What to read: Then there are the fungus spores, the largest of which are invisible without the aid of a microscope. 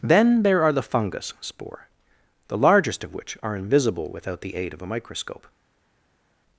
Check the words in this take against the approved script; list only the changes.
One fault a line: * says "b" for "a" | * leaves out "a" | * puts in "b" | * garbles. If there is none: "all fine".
* says "spore" for "spores"